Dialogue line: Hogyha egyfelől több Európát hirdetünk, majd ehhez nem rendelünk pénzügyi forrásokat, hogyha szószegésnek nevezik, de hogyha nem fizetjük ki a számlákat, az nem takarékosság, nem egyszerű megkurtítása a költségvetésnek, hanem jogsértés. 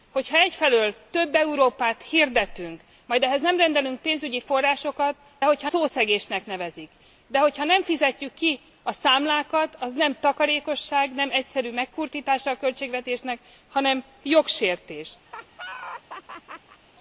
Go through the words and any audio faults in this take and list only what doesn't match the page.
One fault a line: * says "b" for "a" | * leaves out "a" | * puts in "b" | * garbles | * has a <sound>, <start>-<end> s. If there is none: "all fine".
* has a laugh, 15.3-16.8 s